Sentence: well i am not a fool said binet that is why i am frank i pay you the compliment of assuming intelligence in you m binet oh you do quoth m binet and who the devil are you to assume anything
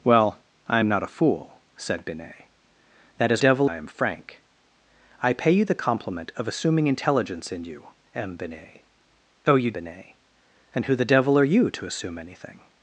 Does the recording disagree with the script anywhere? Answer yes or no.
yes